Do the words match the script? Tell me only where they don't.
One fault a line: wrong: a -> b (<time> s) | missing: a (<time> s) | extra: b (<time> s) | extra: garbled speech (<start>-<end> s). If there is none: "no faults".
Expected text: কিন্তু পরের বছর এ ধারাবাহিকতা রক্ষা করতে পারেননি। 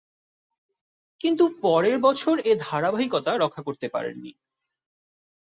no faults